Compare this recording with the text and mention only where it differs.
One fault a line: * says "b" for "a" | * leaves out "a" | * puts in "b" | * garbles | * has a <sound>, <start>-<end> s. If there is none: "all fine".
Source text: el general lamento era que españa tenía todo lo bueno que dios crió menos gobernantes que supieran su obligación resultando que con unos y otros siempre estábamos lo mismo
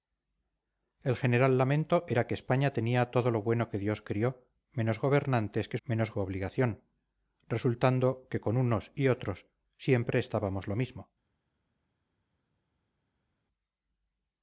* says "menos" for "supieran"